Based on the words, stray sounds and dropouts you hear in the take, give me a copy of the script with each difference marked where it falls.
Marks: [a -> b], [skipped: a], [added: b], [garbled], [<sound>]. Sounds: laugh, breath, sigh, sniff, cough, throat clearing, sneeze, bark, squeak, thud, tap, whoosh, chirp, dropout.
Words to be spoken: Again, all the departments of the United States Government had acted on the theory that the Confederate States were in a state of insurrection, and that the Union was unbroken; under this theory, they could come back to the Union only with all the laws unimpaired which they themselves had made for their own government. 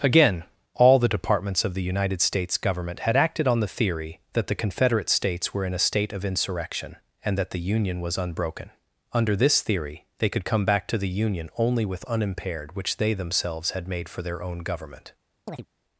Again, all the departments of the United States Government had acted on the theory that the Confederate States were in a state of insurrection, and that the Union was unbroken; under this theory, they could come back to the Union only with [skipped: all the laws] unimpaired which they themselves had made for their own government. [chirp]